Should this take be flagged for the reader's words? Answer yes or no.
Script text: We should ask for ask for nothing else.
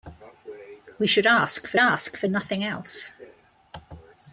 no